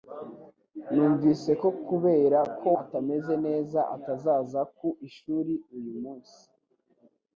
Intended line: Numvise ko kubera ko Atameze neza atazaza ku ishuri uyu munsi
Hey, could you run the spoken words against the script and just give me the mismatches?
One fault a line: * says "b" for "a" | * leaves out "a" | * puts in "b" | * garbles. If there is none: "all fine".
all fine